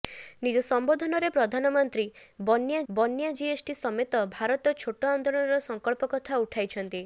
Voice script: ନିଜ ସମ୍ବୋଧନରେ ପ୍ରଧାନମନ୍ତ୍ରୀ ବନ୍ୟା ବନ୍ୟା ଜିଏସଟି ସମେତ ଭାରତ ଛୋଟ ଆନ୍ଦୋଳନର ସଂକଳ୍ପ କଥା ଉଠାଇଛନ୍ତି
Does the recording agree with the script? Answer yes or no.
yes